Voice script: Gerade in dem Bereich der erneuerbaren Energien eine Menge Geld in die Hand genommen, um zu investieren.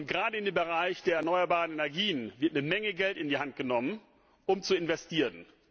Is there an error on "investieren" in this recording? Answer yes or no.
no